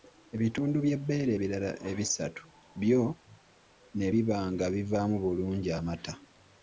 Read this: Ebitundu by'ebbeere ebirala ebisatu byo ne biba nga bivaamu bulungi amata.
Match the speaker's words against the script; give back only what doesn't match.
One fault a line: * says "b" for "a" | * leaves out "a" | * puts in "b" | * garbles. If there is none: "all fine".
all fine